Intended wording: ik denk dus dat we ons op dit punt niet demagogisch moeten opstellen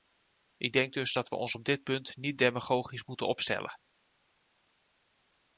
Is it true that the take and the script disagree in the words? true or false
false